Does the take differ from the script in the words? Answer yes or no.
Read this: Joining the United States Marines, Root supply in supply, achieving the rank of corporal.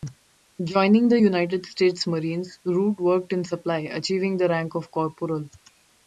yes